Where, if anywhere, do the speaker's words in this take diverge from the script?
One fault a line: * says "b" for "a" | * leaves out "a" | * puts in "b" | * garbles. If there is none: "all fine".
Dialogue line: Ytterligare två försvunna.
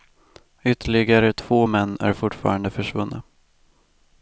* puts in "män är fortfarande"